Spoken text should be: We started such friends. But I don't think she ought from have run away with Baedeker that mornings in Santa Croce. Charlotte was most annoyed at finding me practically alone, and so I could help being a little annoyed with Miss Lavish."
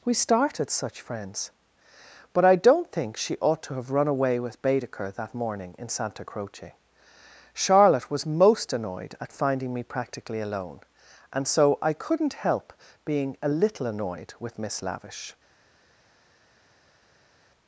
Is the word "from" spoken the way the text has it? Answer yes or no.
no